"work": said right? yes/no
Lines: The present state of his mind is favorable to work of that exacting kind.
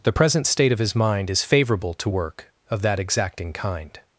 yes